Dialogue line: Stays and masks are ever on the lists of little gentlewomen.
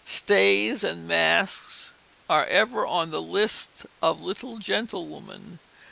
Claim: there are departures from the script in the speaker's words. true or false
false